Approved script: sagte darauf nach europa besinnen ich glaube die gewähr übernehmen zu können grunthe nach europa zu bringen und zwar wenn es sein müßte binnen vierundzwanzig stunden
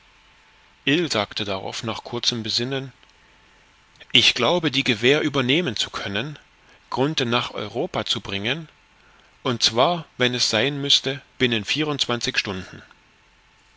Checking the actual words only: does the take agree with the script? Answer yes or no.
no